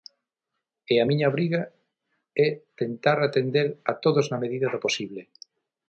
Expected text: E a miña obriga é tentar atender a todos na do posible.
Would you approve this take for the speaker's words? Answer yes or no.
no